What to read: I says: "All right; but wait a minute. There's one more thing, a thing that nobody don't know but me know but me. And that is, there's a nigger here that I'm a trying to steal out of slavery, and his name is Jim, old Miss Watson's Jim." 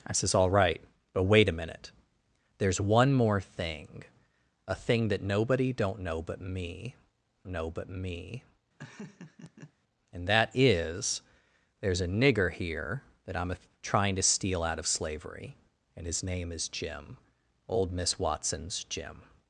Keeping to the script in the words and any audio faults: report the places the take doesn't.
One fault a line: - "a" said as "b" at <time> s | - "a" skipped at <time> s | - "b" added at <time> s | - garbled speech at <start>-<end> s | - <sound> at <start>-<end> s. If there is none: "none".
- laugh at 8.8-9.7 s